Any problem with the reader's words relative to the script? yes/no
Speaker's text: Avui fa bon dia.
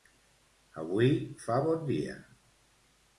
no